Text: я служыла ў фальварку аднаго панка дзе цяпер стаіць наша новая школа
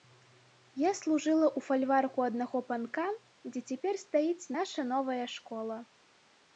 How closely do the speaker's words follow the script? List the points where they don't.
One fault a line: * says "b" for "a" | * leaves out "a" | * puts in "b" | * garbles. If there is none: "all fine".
all fine